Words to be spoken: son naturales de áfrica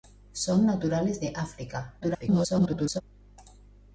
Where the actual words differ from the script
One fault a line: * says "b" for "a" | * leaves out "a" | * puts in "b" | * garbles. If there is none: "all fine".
* garbles